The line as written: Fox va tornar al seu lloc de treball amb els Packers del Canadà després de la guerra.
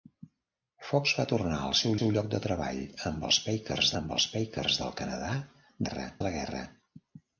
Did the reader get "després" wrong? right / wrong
wrong